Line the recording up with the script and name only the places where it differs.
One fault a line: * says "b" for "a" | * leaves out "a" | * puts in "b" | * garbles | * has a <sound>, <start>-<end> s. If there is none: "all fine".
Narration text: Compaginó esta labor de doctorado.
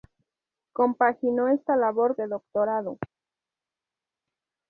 all fine